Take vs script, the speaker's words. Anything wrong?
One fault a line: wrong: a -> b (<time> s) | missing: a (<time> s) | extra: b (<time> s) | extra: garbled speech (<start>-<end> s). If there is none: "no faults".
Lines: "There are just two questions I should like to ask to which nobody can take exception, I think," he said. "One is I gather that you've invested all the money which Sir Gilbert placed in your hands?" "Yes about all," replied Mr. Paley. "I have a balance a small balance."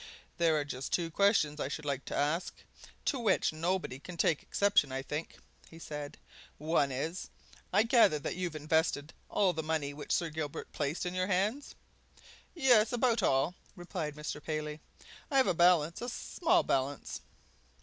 no faults